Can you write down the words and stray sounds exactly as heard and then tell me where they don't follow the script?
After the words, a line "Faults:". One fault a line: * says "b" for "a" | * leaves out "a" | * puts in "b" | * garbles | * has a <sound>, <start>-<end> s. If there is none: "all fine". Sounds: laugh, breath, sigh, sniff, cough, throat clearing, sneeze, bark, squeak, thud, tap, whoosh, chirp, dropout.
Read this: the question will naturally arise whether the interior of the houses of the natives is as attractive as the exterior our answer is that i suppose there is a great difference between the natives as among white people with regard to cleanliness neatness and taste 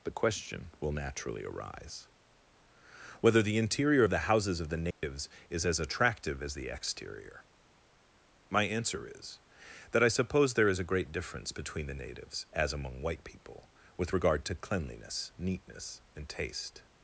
the question will naturally arise whether the interior of the houses of the natives is as attractive as the exterior my answer is that i suppose there is a great difference between the natives as among white people with regard to cleanliness neatness and taste
Faults:
* has a dropout, 4.9-5.0 s
* says "my" for "our"